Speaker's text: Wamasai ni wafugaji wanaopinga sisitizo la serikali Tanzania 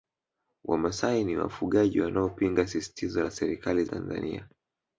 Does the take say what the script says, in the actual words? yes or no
yes